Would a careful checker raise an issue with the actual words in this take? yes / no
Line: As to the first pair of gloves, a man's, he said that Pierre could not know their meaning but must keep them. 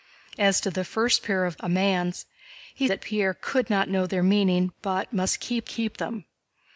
yes